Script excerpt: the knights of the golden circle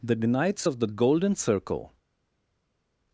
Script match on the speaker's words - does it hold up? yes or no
yes